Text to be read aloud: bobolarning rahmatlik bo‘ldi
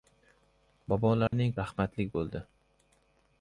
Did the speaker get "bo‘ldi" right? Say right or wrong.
right